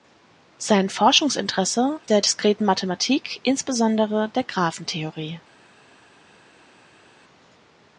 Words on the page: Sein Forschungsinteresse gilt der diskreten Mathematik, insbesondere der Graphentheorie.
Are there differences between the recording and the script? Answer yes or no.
yes